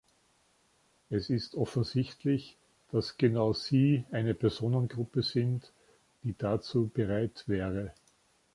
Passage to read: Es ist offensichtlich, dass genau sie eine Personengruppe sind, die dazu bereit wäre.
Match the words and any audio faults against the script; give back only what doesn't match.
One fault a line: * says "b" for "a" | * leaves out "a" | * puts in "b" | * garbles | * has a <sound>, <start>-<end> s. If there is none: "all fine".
all fine